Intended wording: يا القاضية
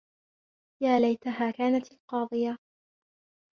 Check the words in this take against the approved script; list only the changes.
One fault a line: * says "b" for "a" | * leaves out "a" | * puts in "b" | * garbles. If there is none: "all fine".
* puts in "ليتها كانت"